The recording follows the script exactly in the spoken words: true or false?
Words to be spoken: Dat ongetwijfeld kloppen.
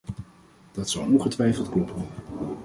false